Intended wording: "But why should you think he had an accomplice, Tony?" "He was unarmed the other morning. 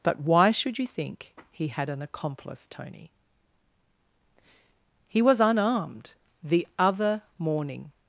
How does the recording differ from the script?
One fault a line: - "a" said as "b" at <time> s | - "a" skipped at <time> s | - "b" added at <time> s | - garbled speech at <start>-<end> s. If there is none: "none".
none